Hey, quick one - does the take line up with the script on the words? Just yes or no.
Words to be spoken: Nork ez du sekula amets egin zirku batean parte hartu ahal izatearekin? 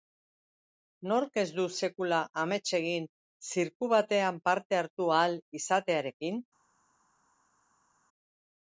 yes